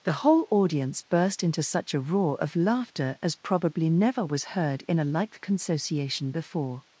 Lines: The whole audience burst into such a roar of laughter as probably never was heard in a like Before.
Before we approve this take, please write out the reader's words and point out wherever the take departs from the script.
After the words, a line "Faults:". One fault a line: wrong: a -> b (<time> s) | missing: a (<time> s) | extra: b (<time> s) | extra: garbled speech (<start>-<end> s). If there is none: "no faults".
The whole audience burst into such a roar of laughter as probably never was heard in a like Consociation before.
Faults:
extra: Consociation (5.4 s)